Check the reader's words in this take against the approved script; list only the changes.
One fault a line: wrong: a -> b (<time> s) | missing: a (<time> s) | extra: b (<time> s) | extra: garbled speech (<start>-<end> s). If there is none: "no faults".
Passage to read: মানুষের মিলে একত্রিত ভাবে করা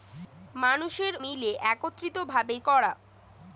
no faults